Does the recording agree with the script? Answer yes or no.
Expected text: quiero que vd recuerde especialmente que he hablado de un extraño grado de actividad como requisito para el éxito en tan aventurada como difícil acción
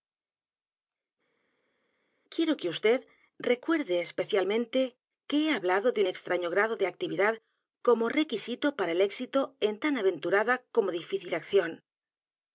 yes